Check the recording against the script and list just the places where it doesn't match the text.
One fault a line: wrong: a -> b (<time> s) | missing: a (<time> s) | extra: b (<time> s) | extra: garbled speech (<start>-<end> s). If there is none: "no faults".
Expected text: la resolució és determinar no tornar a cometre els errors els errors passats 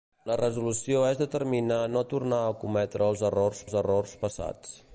no faults